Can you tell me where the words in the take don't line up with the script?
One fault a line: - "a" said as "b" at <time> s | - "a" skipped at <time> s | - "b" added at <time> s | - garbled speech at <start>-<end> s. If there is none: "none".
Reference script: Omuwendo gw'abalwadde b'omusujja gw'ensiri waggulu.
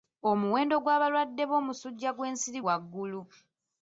none